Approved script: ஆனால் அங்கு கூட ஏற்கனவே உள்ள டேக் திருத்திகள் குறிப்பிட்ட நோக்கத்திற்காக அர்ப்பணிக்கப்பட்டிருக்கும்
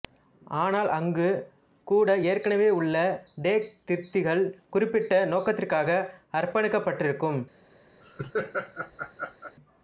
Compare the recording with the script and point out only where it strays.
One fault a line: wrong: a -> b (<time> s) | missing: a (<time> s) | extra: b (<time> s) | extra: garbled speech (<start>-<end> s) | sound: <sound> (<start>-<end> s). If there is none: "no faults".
sound: laugh (8.0-9.6 s)